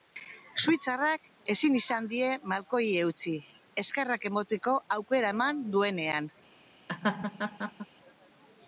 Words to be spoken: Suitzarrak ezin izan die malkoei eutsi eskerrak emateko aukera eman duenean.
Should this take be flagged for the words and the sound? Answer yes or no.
yes